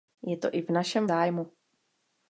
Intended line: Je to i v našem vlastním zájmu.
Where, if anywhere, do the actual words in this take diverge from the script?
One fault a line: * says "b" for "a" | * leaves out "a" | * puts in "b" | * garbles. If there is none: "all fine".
* leaves out "vlastním"